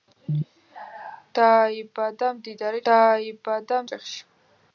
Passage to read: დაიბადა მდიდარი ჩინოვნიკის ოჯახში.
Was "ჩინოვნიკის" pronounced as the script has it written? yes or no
no